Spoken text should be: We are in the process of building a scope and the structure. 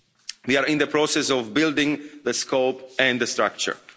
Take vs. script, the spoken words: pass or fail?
fail